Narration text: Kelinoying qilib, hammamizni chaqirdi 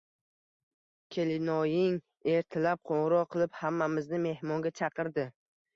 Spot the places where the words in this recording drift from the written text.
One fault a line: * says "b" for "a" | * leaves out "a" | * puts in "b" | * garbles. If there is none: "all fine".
* puts in "ertalab qo`ng`iroq"
* puts in "mehmonga"